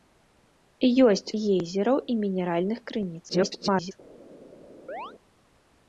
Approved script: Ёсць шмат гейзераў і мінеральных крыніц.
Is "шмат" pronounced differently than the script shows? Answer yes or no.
yes